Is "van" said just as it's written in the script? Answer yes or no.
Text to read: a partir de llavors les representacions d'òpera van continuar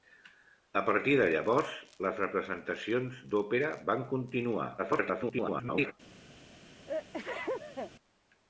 yes